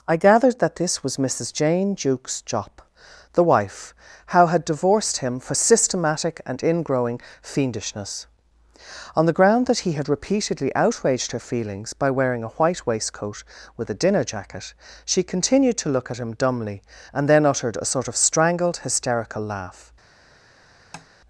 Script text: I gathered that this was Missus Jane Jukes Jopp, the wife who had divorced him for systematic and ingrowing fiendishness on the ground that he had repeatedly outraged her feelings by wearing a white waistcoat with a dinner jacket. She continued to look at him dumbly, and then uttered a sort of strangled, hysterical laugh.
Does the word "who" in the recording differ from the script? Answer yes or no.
yes